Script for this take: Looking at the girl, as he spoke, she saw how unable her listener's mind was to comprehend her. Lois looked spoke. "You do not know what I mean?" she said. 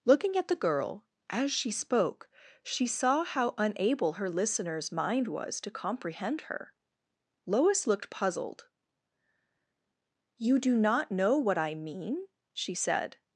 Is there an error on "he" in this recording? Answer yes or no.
yes